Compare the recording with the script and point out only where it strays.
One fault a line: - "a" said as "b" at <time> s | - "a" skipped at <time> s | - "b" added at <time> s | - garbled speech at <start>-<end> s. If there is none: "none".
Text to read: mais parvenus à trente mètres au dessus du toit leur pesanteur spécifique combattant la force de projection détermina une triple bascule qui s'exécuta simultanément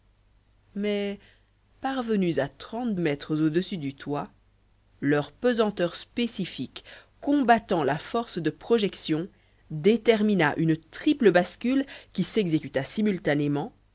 none